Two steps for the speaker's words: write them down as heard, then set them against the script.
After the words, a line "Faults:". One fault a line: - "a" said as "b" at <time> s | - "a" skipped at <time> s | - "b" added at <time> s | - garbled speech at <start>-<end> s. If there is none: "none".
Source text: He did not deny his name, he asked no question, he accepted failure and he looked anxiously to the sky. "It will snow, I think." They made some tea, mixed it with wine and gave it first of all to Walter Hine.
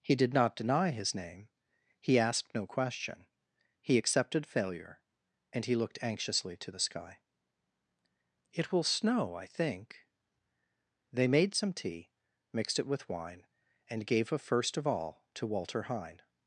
He did not deny his name, he asked no question, he accepted failure and he looked anxiously to the sky. "It will snow, I think." They made some tea, mixed it with wine and gave a first of all to Walter Hine.
Faults:
- "it" said as "a" at 14.3 s